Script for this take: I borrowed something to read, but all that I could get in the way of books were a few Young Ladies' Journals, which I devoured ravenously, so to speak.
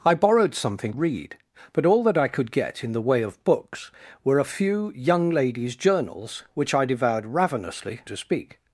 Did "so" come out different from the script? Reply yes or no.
yes